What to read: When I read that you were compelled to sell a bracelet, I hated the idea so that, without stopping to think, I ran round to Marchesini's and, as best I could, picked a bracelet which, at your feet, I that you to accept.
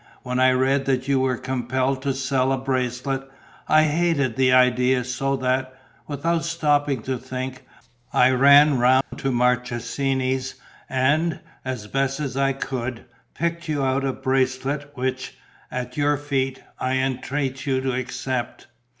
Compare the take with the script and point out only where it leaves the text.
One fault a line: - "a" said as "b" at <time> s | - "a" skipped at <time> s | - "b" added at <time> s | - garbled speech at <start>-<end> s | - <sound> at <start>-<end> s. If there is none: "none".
- dropout at 9.0-9.1 s
- "you out" added at 13.7 s
- "that" said as "entreat" at 17.0 s